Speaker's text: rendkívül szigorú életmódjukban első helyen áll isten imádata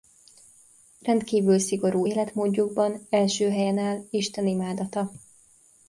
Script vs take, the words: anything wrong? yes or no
no